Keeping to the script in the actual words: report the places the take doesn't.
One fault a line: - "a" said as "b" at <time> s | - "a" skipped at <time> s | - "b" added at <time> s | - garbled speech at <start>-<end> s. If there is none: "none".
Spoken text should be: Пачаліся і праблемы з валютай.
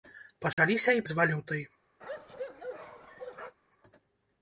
- "праблемы" skipped at 1.1 s